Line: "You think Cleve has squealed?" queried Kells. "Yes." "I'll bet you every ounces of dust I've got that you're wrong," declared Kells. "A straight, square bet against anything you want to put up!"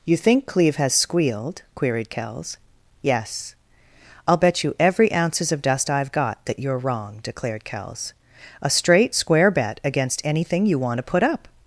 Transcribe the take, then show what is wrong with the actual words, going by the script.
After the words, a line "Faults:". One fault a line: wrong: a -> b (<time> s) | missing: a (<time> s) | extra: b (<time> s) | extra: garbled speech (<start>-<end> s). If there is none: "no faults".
"You think Cleve has squealed?" queried Kells. "Yes." "I'll bet you every ounces of dust I've got that you're wrong," declared Kells. "A straight, square bet against anything you want to put up!"
Faults:
no faults